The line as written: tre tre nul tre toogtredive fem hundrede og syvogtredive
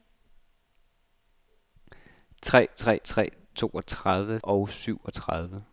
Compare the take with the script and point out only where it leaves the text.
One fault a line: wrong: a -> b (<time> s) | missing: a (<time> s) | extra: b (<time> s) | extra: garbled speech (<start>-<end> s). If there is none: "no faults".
missing: nul (3.0 s)
missing: fem hundrede (4.4 s)